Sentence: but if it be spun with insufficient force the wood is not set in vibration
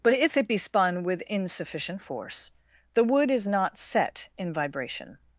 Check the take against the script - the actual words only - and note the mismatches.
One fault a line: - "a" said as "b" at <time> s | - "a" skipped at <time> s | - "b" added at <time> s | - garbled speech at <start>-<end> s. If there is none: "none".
none